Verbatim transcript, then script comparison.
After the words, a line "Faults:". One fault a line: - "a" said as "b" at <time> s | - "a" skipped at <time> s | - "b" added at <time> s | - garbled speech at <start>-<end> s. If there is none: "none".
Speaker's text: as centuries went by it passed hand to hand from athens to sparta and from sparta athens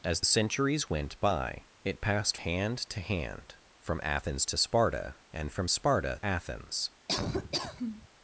as centuries went by it passed hand to hand from athens to sparta and from sparta athens
Faults:
none